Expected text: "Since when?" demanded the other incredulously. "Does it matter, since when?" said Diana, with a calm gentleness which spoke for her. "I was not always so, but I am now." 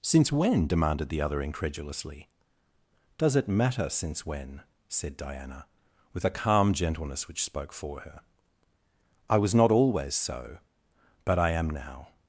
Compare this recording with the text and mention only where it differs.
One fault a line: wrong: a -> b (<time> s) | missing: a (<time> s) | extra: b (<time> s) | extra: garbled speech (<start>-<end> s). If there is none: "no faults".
no faults